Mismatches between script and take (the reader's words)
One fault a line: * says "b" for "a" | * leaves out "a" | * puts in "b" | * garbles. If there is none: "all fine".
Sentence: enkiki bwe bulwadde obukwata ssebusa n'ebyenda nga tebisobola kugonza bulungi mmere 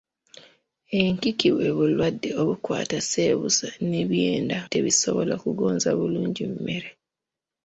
* leaves out "nga"